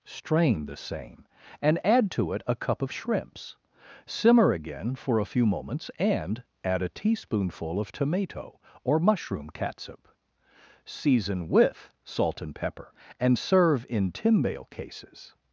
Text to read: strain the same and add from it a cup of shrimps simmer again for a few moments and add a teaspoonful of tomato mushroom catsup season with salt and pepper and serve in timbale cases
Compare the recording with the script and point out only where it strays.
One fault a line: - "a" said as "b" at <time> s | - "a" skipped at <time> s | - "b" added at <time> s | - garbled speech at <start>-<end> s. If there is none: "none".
- "from" said as "to" at 2.1 s
- "or" added at 8.8 s